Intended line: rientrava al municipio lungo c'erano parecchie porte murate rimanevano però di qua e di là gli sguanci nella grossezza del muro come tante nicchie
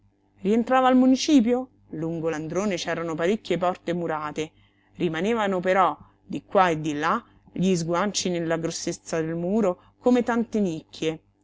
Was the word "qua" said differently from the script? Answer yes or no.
no